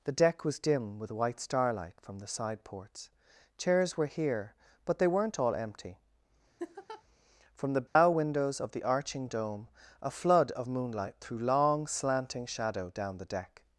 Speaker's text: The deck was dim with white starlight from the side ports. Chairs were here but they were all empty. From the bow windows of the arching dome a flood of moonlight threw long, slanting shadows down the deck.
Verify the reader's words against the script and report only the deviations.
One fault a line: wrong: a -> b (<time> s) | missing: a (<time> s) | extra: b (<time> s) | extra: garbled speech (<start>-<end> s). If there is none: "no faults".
wrong: were -> weren't (5.1 s)
wrong: shadows -> shadow (12.5 s)